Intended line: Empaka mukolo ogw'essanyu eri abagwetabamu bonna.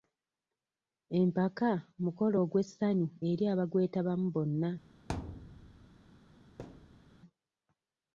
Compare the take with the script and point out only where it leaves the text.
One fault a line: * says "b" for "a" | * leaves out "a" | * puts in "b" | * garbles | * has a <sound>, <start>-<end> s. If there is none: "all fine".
* has a thud, 5.1-5.9 s
* has a thud, 6.6-7.1 s